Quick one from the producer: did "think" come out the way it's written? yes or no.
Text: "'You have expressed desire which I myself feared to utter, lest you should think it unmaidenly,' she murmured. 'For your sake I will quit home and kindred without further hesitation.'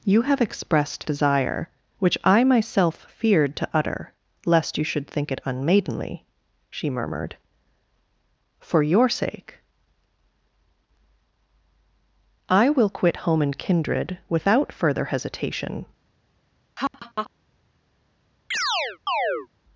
yes